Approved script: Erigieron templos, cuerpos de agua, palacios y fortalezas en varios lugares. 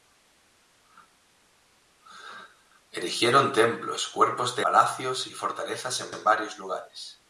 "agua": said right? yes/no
no